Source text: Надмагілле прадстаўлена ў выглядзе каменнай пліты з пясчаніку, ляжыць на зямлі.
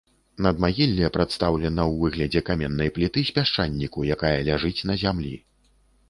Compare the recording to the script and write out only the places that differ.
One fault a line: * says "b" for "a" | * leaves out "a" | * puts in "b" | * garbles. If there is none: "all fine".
* puts in "якая"